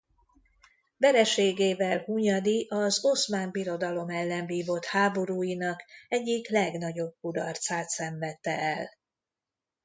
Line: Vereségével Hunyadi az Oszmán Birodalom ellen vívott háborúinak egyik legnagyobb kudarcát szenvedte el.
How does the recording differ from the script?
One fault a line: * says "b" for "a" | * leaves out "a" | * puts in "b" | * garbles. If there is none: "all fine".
all fine